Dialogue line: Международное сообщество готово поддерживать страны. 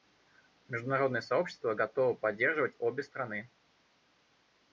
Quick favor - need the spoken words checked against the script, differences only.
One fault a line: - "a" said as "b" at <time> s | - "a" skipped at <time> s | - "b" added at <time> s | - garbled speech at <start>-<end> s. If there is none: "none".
- "обе" added at 2.8 s